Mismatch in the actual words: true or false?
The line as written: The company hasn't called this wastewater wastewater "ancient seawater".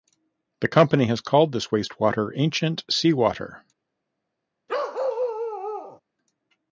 true